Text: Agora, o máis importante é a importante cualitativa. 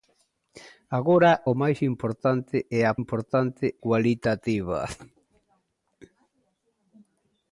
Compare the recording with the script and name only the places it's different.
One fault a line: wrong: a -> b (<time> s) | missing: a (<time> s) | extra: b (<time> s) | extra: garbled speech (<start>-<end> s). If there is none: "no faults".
no faults